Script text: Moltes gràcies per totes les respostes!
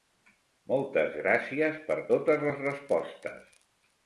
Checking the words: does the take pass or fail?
pass